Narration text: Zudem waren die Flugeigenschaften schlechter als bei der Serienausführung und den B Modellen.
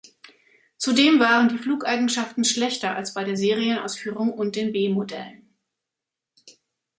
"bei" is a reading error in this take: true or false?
false